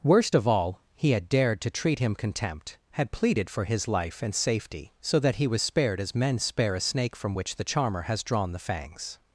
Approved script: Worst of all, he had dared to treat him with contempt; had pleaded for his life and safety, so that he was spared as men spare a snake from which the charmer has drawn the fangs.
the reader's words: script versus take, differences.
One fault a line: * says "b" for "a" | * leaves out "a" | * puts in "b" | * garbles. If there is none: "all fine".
* leaves out "with"